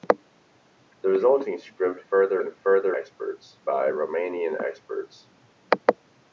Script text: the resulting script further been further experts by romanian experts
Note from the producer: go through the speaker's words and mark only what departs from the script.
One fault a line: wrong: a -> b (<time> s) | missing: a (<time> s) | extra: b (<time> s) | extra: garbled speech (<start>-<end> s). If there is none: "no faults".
no faults